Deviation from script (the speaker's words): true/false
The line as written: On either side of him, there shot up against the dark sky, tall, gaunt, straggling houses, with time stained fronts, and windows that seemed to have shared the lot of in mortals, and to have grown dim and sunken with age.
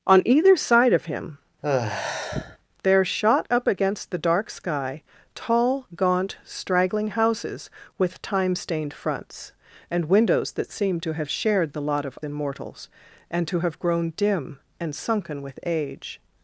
false